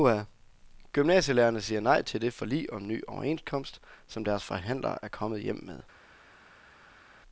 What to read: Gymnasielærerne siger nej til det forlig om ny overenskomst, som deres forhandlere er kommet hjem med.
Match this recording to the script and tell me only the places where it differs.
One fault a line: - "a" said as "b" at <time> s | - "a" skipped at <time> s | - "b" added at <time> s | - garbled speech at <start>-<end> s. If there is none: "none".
none